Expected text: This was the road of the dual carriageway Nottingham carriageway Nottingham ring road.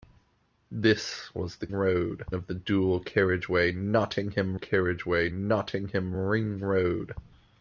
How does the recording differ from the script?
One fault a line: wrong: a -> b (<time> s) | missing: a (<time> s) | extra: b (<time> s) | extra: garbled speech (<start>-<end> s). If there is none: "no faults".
no faults